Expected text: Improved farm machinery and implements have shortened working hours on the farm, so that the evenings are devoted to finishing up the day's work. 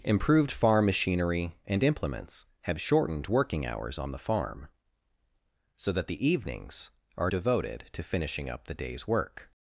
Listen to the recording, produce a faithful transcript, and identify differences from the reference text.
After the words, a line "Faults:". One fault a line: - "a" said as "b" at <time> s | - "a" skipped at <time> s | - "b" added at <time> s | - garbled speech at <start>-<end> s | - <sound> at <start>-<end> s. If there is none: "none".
Improved farm machinery and implements have shortened working hours on the farm, so that the evenings are devoted to finishing up the day's work.
Faults:
none